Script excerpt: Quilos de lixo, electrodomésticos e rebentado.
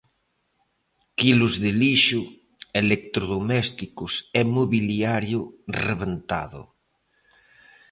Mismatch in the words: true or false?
true